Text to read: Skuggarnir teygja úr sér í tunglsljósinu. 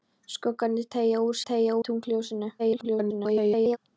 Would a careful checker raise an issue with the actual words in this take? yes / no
yes